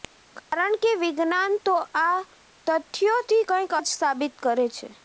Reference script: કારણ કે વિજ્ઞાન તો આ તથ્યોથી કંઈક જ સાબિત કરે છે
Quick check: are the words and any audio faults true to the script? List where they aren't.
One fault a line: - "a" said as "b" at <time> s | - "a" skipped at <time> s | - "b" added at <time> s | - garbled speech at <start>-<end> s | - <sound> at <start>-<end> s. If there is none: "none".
- dropout at 0.4-0.5 s